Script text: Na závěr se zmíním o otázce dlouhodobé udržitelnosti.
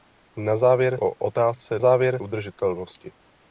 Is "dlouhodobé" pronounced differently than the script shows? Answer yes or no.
yes